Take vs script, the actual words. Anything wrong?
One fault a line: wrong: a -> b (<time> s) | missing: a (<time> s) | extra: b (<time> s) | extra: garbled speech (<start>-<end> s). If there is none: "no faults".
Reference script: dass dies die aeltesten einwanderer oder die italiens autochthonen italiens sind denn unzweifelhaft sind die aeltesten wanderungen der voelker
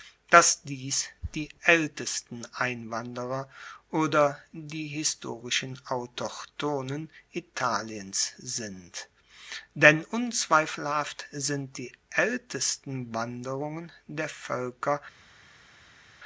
wrong: italiens -> historischen (4.9 s)